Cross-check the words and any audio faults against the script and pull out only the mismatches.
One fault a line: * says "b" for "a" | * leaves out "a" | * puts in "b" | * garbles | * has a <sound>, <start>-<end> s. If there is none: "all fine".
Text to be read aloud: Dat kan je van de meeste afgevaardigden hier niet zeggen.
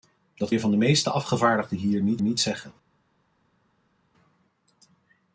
* leaves out "kan"
* puts in "niet"